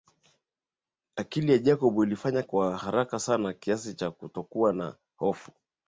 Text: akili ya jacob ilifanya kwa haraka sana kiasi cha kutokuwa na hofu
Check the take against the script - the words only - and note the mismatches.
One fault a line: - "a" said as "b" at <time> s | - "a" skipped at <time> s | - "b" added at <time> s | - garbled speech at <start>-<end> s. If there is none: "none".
none